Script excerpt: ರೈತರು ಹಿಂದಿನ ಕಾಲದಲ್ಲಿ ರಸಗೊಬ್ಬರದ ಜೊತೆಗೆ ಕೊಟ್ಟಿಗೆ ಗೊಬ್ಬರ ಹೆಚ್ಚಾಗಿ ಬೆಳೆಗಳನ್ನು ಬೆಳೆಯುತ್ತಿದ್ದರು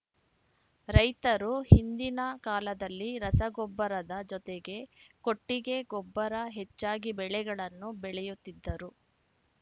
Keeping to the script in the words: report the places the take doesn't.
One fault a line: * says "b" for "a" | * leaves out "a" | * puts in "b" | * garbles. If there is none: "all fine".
all fine